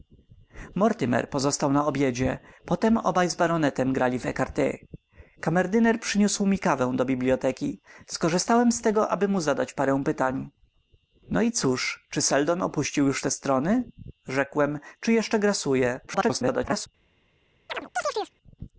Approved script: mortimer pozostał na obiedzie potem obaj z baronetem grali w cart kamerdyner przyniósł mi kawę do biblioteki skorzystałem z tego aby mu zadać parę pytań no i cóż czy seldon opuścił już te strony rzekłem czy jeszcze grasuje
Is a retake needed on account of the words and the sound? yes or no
yes